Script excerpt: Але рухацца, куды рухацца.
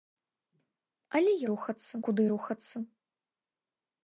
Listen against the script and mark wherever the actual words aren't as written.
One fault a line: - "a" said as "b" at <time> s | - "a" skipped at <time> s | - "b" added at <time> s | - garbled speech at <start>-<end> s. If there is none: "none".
none